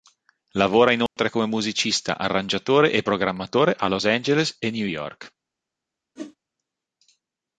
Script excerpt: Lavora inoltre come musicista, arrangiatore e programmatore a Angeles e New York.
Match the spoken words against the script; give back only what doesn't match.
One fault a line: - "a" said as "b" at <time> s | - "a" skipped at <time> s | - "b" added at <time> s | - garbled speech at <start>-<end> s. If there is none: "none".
- "Los" added at 3.9 s